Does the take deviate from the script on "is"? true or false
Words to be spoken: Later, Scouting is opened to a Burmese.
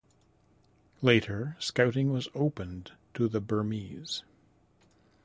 true